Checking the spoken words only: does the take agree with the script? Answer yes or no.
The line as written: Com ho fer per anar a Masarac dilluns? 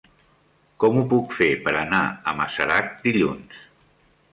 no